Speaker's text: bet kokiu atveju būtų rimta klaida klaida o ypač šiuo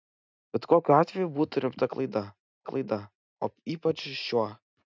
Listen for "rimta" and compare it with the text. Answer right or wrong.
right